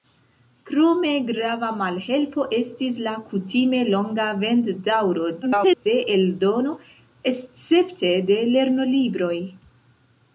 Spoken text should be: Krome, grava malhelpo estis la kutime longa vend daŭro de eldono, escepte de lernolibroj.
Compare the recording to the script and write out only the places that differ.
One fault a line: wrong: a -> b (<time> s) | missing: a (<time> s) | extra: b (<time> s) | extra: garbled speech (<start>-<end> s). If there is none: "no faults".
extra: garbled speech (5.4-5.9 s)